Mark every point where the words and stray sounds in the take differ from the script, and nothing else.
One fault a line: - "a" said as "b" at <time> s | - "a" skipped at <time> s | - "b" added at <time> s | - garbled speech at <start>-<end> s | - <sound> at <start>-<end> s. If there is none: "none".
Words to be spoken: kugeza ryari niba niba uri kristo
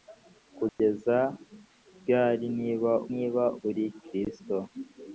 - dropout at 0.7-0.8 s